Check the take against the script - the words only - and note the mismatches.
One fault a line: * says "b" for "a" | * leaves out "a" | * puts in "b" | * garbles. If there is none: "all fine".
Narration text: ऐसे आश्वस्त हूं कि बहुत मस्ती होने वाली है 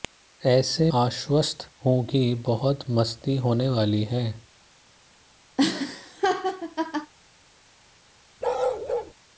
all fine